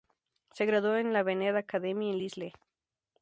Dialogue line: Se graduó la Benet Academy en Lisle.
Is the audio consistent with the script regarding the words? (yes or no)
no